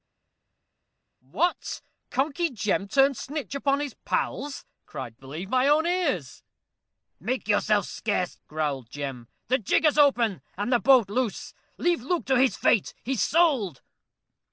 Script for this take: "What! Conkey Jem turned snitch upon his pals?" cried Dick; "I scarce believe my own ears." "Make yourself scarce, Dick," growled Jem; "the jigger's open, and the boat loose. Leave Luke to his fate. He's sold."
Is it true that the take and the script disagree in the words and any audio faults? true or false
true